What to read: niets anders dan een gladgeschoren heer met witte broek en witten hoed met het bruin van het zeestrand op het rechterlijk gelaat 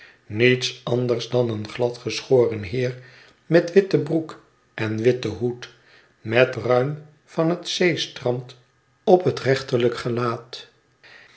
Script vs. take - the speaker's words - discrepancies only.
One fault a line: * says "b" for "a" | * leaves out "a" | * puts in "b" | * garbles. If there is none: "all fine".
* leaves out "het"